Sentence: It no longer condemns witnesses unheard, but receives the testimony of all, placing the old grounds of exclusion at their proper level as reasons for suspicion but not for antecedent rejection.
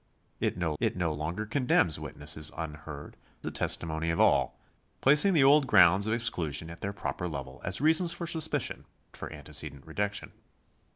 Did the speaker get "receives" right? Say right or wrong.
wrong